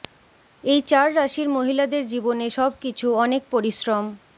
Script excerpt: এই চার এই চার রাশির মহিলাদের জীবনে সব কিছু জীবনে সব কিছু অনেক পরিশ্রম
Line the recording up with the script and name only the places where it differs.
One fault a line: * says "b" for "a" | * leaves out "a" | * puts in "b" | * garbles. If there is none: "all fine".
* leaves out "এই চার"
* leaves out "জীবনে সব কিছু"